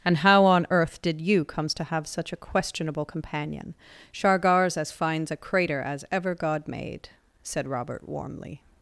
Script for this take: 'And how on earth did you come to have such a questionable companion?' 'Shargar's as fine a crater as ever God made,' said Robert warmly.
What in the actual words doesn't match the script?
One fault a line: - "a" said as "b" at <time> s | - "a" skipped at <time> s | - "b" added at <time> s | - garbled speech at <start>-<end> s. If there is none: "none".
- "come" said as "comes" at 1.4 s
- "fine" said as "fines" at 4.9 s